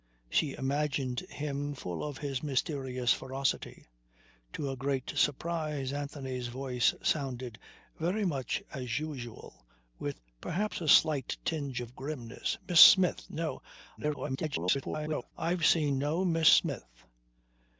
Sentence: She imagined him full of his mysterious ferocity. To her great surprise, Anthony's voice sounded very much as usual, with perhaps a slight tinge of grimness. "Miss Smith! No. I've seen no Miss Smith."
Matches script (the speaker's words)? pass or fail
fail